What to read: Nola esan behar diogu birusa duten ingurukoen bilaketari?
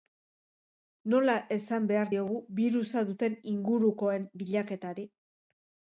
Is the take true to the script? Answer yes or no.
yes